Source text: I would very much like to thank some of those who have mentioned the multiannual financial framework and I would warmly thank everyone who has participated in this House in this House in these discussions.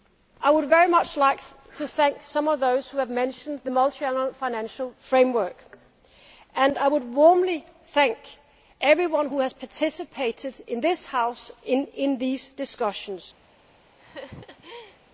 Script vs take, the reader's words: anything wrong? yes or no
yes